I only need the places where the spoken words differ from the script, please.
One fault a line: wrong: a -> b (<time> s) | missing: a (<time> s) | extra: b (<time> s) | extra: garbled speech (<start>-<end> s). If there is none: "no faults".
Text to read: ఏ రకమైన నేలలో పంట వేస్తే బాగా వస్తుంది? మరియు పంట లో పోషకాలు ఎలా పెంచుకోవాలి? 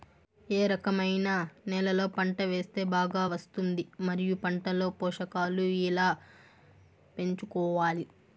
no faults